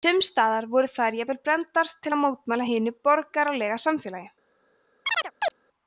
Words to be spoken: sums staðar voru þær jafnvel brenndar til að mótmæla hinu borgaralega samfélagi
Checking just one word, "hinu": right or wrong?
right